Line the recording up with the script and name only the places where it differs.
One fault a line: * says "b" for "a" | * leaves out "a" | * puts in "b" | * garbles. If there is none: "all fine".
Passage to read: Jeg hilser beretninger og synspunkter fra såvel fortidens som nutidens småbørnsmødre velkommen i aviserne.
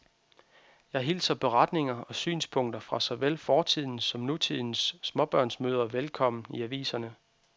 all fine